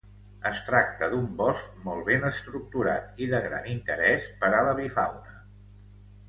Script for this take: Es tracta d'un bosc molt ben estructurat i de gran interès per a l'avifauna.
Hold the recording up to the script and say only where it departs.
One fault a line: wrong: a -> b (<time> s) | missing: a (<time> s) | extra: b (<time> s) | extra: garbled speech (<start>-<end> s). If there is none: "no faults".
no faults